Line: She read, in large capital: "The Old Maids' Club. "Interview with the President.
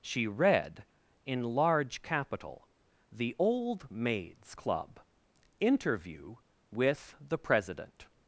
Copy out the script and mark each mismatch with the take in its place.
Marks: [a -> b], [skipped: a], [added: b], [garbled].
She read, in large capital: "The Old Maids' Club. "Interview with the President.